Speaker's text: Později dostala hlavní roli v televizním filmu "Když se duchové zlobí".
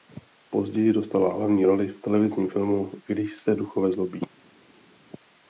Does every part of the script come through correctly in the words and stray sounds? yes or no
yes